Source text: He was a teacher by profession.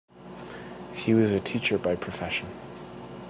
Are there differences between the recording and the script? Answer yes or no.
no